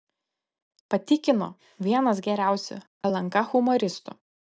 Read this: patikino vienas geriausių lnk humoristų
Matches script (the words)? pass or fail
pass